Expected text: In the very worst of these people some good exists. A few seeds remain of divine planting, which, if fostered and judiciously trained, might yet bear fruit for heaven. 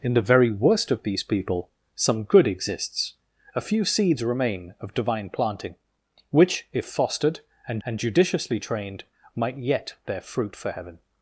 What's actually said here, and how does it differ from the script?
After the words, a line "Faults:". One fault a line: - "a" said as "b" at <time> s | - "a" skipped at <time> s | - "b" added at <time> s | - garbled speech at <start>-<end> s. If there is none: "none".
In the very worst of these people some good exists. A few seeds remain of divine planting, which, if fostered and and judiciously trained, might yet bear fruit for heaven.
Faults:
- "and" added at 7.8 s